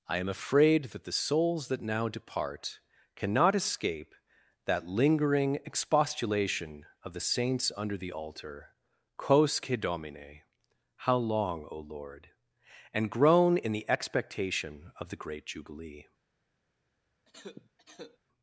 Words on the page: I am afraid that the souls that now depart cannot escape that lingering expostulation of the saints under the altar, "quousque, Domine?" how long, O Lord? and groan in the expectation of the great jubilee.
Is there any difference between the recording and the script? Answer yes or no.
no